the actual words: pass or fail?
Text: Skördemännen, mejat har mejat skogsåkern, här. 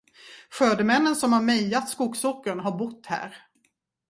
fail